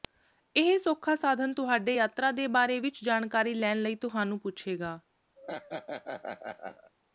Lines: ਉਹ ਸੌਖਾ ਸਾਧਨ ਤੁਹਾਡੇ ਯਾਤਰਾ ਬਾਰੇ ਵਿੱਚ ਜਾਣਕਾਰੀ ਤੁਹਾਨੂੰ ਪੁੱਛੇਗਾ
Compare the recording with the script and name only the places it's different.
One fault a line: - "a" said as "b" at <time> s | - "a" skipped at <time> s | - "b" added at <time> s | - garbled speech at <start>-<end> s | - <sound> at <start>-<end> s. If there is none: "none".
- "ਉਹ" said as "ਇਹ" at 0.6 s
- "ਦੇ" added at 2.3 s
- "ਲੈਣ ਲਈ" added at 3.5 s
- laugh at 5.4-6.9 s